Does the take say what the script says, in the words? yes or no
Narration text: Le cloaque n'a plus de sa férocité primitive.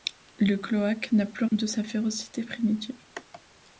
yes